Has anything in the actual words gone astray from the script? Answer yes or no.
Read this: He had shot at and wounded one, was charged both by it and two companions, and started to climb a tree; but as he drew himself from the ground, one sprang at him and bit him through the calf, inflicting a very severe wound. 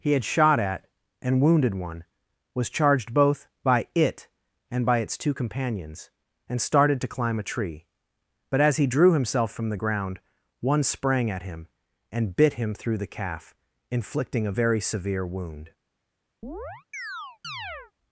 yes